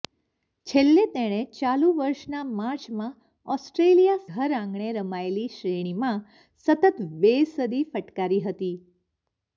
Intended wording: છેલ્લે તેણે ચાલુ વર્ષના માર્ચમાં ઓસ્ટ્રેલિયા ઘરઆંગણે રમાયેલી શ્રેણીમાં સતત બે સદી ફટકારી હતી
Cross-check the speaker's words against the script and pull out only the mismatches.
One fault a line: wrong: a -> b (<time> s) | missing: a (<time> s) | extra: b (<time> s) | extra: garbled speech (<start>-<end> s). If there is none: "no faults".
no faults